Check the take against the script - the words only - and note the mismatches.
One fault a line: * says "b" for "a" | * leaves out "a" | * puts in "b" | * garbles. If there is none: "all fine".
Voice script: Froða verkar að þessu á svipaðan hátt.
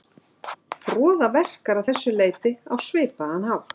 * puts in "leyti"